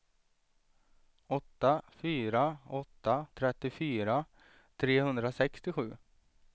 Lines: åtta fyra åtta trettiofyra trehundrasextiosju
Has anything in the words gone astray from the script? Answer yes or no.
no